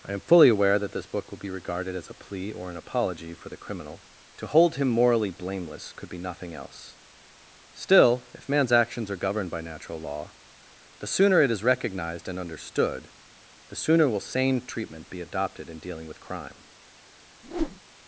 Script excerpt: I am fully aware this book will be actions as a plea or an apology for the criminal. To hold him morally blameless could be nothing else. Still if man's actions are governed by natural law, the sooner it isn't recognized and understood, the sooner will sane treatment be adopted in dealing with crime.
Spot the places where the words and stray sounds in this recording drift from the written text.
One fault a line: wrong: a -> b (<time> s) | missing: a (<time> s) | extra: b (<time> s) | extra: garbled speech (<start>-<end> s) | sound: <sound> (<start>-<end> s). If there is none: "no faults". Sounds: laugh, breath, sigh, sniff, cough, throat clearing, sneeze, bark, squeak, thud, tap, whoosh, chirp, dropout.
extra: that (0.8 s)
wrong: actions -> regarded (1.5 s)
wrong: isn't -> is (11.5 s)
sound: whoosh (17.4-17.8 s)